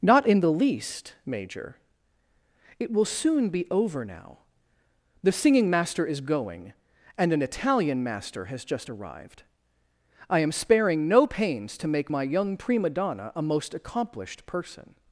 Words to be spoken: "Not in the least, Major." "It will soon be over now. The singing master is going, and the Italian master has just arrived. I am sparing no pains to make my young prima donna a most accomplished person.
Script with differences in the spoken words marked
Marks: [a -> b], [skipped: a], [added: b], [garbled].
"Not in the least, Major." "It will soon be over now. The singing master is going, and [the -> an] Italian master has just arrived. I am sparing no pains to make my young prima donna a most accomplished person.